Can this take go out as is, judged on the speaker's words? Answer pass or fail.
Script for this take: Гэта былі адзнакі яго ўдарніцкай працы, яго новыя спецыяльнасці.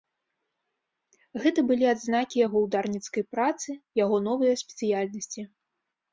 pass